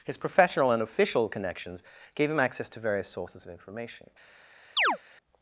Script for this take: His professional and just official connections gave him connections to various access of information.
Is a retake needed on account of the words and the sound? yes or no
yes